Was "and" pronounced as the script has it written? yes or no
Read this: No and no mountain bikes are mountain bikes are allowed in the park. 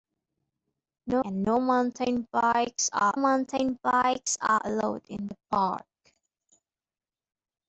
yes